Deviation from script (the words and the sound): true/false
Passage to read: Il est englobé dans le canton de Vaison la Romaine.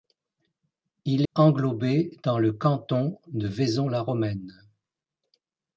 true